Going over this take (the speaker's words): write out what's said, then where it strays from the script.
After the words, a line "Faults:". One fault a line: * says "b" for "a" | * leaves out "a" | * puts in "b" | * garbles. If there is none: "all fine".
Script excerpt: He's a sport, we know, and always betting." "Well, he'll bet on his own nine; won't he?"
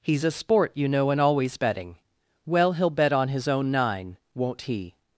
He's a sport, you know, and always betting." "Well, he'll bet on his own nine; won't he?"
Faults:
* says "you" for "we"